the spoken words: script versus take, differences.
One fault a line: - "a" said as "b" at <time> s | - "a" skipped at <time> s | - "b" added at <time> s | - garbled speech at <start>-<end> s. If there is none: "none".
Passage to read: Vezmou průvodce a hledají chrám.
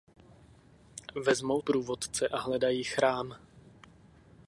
none